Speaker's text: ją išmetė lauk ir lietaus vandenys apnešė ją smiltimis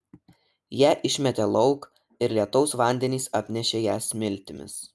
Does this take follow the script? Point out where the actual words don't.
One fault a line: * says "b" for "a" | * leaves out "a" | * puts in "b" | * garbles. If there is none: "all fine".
all fine